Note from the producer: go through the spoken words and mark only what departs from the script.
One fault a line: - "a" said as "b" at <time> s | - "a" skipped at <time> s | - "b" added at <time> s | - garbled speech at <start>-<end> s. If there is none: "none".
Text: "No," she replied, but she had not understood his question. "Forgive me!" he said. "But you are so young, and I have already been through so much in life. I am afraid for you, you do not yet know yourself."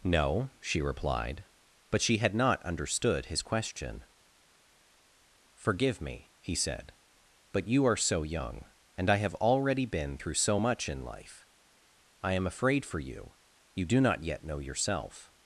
none